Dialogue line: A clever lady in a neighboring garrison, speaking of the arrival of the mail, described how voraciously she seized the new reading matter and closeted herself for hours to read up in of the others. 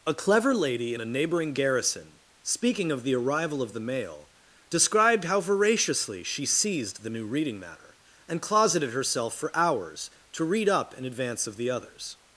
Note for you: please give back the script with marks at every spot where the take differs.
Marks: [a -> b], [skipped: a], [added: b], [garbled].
A clever lady in a neighboring garrison, speaking of the arrival of the mail, described how voraciously she seized the new reading matter and closeted herself for hours to read up in [added: advance] of the others.